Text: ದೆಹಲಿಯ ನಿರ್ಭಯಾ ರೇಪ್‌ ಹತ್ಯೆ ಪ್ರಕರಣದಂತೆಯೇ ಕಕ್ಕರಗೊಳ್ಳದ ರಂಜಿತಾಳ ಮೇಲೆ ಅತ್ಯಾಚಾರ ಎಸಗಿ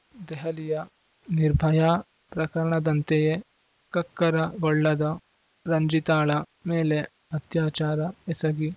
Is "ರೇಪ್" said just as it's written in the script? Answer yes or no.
no